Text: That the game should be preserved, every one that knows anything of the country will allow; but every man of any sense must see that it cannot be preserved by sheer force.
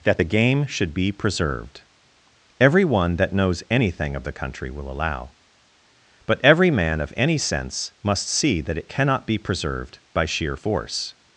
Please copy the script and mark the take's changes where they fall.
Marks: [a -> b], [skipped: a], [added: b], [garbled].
That the game should be preserved, every one that knows anything of the country will allow; but every man of any sense must see that it cannot be preserved by sheer force.